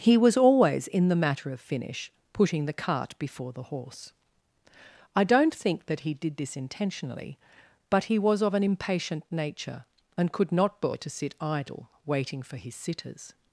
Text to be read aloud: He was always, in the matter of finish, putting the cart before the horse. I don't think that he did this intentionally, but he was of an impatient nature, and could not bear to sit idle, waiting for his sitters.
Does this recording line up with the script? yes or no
yes